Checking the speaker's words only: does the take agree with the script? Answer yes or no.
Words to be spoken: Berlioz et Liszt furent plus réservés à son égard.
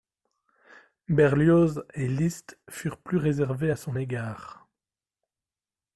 yes